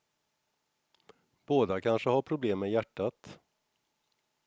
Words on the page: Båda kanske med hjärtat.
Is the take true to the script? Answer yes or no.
no